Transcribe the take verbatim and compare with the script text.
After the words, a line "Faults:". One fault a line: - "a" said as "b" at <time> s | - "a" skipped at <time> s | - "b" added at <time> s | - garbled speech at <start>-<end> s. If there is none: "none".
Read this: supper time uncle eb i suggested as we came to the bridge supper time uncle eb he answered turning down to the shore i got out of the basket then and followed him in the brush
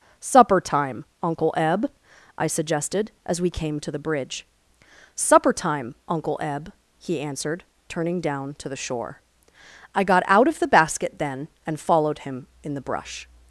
supper time uncle eb i suggested as we came to the bridge supper time uncle eb he answered turning down to the shore i got out of the basket then and followed him in the brush
Faults:
none